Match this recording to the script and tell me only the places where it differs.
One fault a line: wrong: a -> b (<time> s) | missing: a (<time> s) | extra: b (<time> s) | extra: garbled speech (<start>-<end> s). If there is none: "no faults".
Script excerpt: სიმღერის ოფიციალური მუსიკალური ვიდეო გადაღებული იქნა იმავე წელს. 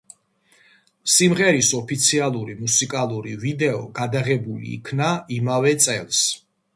no faults